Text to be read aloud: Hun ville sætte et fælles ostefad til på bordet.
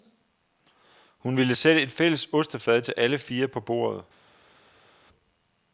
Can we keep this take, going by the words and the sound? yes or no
no